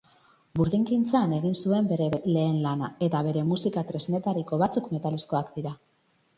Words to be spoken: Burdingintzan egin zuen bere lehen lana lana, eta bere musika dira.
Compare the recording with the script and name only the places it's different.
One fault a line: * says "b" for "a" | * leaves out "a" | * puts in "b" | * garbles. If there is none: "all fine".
* leaves out "lana"
* puts in "tresnetariko batzuk metalezkoak"